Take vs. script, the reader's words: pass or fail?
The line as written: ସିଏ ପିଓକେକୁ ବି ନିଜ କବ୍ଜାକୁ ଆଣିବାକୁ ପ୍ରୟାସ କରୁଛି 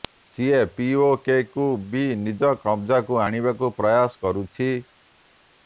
pass